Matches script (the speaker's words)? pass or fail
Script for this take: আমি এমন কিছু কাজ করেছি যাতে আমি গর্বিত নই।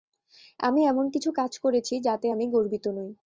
pass